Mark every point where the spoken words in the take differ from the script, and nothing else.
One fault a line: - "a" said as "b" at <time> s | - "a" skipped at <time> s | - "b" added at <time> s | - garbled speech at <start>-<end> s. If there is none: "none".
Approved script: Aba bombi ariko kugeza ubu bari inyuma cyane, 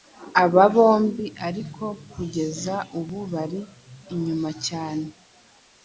none